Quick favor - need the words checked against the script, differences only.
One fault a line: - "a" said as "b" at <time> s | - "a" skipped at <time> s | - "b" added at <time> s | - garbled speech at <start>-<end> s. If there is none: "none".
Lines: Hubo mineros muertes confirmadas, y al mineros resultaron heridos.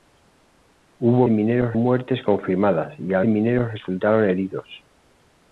none